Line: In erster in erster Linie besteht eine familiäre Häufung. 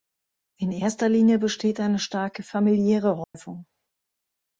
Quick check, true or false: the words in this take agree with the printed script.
false